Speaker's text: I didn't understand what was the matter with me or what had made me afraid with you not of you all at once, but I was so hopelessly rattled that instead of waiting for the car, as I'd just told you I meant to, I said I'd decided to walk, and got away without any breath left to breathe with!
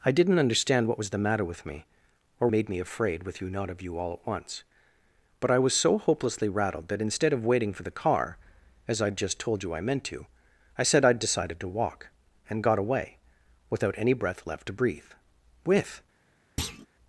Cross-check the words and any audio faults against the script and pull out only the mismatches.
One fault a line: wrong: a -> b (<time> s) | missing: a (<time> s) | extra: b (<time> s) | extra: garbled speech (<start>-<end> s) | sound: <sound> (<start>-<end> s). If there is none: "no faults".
missing: what had (2.5 s)
sound: thud (16.6-16.9 s)